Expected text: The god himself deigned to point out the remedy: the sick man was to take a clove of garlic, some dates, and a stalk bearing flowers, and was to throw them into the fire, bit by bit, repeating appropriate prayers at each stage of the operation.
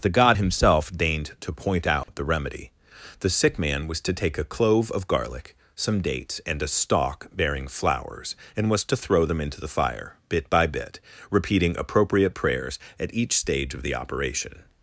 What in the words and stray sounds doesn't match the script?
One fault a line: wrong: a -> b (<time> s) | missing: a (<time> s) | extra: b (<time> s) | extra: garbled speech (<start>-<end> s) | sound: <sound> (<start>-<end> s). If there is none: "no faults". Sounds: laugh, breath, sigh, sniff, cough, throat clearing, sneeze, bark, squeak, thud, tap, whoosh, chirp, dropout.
sound: dropout (2.0-2.1 s)